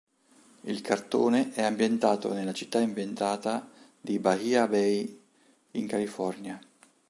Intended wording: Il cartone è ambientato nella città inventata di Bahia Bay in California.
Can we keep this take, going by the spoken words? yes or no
yes